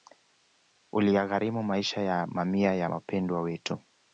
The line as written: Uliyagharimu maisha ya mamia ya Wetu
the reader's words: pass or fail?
fail